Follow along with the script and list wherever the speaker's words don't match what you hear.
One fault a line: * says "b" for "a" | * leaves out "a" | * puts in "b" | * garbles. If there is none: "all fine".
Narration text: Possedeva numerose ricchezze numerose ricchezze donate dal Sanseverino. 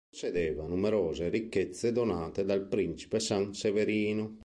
* leaves out "numerose ricchezze"
* puts in "Principe"